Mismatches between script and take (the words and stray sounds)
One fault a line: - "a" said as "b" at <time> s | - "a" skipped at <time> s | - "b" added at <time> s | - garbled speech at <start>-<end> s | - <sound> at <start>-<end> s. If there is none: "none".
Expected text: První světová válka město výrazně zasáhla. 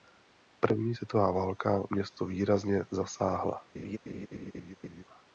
- laugh at 3.7-5.0 s